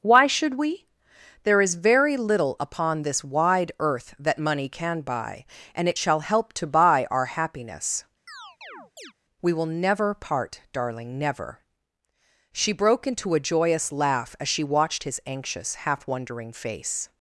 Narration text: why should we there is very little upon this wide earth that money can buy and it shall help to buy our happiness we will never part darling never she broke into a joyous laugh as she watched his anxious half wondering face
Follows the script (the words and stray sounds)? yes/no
no